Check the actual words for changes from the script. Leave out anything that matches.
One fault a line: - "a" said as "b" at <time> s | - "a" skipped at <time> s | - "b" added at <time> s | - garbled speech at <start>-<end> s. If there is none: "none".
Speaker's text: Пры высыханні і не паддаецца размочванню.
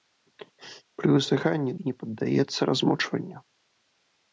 none